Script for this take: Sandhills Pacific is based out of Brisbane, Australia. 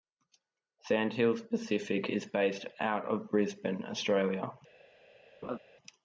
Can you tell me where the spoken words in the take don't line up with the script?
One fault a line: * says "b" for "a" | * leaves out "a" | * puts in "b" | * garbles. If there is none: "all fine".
all fine